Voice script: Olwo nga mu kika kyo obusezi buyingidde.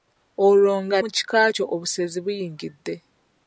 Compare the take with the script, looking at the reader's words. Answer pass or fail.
pass